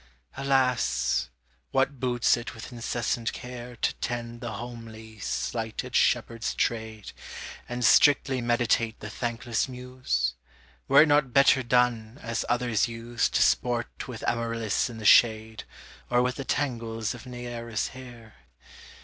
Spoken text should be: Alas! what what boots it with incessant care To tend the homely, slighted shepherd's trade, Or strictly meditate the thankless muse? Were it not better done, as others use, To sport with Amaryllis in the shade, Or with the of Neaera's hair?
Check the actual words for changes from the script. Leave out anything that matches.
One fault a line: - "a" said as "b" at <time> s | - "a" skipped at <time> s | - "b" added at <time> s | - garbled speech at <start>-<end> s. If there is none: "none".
- "what" skipped at 2.0 s
- "Or" said as "And" at 7.7 s
- "tangles" added at 16.4 s